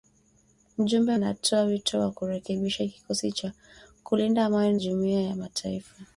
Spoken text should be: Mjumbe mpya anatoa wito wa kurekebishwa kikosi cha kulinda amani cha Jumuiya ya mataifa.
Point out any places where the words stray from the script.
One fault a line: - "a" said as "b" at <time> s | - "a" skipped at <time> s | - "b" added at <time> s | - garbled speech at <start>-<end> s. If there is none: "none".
- "mpya" skipped at 1.2 s
- "cha" skipped at 4.8 s